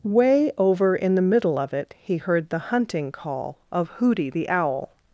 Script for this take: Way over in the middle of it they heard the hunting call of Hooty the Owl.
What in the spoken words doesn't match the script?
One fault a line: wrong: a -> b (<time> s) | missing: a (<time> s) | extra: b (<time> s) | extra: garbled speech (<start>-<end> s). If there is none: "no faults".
wrong: they -> he (2.0 s)